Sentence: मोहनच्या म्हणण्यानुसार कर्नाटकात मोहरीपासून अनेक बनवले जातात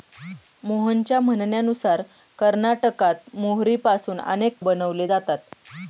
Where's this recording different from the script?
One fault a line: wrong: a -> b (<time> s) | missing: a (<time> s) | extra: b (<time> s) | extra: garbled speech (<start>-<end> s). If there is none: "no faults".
no faults